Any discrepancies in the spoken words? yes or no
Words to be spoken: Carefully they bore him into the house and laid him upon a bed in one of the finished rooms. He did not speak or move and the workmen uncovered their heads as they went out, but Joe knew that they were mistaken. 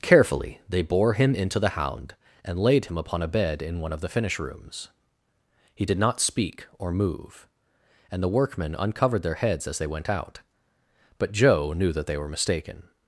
yes